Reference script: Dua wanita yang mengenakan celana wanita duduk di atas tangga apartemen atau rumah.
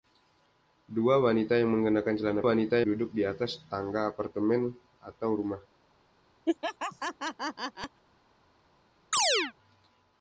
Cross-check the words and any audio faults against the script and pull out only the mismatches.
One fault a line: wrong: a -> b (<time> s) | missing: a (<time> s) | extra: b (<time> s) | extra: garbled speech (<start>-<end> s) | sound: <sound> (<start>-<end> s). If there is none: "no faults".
sound: laugh (6.5-8.0 s)
sound: chirp (9.1-9.5 s)